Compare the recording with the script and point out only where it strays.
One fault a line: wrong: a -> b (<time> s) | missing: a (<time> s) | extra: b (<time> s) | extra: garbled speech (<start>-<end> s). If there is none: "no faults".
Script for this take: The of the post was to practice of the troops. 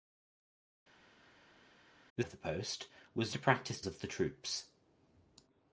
no faults